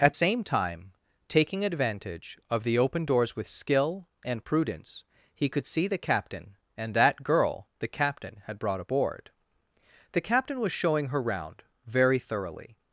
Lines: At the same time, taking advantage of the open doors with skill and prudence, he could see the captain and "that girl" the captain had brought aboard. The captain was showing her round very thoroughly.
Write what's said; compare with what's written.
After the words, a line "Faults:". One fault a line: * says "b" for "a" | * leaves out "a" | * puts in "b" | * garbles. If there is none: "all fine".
At same time, taking advantage of the open doors with skill and prudence, he could see the captain and "that girl" the captain had brought aboard. The captain was showing her round very thoroughly.
Faults:
* leaves out "the"